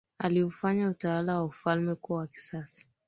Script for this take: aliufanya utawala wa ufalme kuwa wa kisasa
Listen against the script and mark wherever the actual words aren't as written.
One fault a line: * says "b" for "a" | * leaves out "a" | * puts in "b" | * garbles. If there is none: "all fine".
all fine